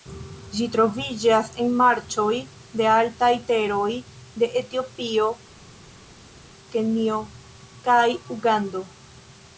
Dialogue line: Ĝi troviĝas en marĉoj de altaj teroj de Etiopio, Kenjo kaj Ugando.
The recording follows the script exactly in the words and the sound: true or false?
true